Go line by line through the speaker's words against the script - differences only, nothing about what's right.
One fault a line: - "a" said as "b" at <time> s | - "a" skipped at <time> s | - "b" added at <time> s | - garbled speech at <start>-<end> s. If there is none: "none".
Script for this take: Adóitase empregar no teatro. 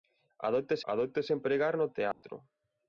- "adóitase" added at 0.9 s